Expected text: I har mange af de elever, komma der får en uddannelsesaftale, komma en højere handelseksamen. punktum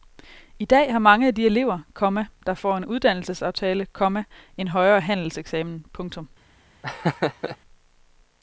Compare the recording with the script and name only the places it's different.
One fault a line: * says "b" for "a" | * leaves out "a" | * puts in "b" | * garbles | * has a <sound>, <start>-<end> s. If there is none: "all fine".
* puts in "dag"
* has a laugh, 6.8-7.6 s